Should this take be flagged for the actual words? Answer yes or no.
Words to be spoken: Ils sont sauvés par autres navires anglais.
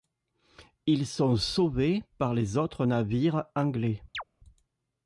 yes